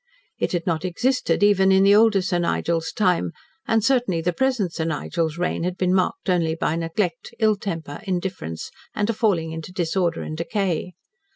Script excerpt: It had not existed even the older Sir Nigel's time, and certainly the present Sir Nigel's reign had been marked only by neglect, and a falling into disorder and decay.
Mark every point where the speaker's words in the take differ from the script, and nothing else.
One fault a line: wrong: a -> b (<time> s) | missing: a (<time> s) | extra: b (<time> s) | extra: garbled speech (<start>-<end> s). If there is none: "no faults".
extra: in (1.7 s)
extra: ill temper indifference (7.4 s)